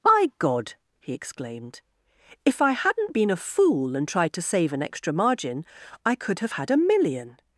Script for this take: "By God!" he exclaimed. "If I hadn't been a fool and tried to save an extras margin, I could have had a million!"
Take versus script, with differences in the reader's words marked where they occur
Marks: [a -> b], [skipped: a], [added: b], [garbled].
"By God!" he exclaimed. "If I hadn't been a fool and tried to save an [extras -> extra] margin, I could have had a million!"